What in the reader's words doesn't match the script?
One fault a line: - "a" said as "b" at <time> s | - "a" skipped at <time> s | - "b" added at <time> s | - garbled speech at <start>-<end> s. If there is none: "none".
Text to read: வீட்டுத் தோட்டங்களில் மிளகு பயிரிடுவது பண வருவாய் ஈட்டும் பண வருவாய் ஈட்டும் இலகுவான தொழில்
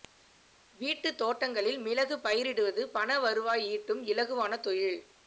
- "பண வருவாய் ஈட்டும்" skipped at 4.0 s